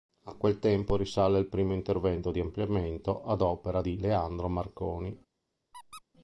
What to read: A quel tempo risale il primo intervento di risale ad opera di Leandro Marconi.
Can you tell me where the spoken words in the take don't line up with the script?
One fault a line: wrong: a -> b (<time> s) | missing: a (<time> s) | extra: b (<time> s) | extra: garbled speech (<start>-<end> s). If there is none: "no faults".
wrong: risale -> ampliamento (2.4 s)